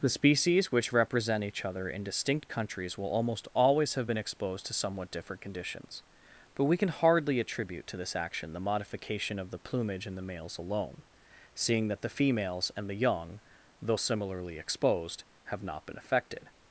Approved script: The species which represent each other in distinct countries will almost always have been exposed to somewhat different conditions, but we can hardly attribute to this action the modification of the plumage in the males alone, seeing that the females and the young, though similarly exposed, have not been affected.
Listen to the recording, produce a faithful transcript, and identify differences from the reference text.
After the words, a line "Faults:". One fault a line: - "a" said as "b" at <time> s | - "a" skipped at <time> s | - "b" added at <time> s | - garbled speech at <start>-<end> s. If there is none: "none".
The species which represent each other in distinct countries will almost always have been exposed to somewhat different conditions, but we can hardly attribute to this action the modification of the plumage in the males alone, seeing that the females and the young, though similarly exposed, have not been affected.
Faults:
none